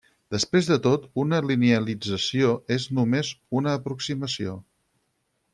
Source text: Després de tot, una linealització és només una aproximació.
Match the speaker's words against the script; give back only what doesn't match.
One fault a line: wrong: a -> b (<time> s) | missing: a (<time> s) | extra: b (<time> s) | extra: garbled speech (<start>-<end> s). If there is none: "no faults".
no faults